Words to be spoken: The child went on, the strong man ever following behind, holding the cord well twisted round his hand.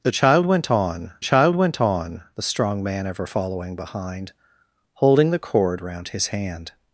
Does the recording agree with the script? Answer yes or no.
no